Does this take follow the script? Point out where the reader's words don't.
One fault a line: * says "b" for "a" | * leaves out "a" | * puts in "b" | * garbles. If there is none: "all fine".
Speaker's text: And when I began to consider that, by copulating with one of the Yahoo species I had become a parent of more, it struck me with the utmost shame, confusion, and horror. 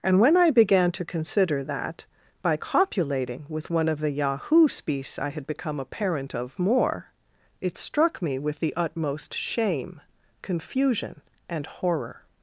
all fine